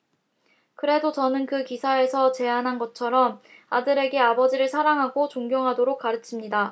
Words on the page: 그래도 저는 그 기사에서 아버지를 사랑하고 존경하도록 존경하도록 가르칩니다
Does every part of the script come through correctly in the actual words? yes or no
no